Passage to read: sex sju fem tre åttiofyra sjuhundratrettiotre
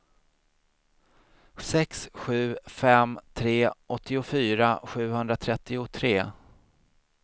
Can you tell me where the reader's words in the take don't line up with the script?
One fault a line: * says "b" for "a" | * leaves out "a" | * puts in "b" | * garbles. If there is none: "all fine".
all fine